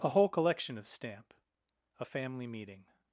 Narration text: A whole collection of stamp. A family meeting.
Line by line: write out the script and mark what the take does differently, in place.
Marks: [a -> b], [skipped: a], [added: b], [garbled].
A whole collection of stamp. A family meeting.